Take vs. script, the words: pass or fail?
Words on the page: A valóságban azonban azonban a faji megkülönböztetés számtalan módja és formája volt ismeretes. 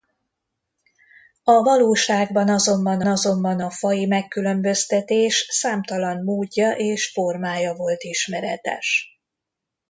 pass